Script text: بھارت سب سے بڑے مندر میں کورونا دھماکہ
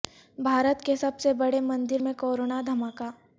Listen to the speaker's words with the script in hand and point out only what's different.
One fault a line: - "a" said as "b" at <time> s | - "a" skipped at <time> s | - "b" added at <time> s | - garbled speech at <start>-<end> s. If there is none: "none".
- "کے" added at 0.8 s